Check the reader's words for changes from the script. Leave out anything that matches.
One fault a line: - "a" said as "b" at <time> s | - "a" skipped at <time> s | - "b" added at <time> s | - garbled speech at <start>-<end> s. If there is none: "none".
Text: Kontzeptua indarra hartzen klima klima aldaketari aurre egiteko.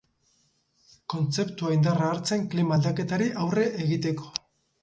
- "klima" skipped at 2.8 s